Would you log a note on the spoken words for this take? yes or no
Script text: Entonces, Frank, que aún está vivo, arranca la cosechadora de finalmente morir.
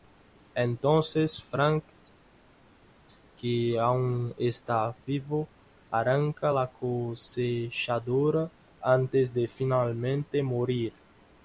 yes